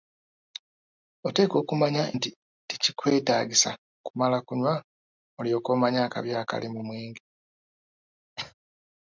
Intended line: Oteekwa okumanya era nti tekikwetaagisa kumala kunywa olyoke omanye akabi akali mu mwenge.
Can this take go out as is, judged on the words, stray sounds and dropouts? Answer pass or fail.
fail